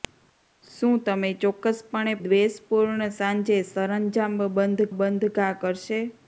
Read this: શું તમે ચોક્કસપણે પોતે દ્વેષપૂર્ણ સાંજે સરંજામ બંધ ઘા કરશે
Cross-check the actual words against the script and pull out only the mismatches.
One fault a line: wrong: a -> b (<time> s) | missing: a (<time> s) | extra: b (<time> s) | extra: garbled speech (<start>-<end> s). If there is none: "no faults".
missing: પોતે (2.1 s)
extra: બંધ (4.9 s)